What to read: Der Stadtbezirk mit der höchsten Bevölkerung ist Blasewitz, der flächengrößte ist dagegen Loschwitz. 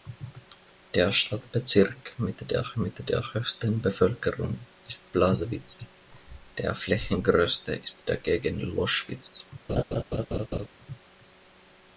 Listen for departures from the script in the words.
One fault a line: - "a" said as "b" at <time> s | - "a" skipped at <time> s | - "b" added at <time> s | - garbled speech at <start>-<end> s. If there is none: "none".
- "mit der" added at 2.7 s